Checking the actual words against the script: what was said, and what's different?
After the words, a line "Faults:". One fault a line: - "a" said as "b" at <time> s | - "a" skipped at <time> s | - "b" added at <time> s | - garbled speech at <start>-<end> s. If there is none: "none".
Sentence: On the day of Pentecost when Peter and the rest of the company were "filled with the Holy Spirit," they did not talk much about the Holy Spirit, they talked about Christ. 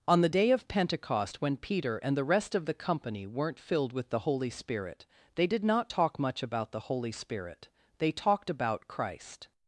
On the day of Pentecost when Peter and the rest of the company weren't "filled with the Holy Spirit," they did not talk much about the Holy Spirit, they talked about Christ.
Faults:
- "were" said as "weren't" at 3.3 s